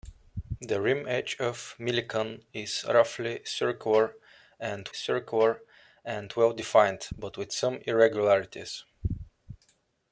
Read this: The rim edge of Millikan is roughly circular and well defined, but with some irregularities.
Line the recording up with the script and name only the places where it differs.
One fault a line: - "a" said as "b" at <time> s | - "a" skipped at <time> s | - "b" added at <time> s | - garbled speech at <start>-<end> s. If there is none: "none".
- "circular and" added at 4.9 s